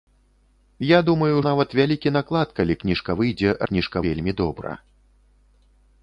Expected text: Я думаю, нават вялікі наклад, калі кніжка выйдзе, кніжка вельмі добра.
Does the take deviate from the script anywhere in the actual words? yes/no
no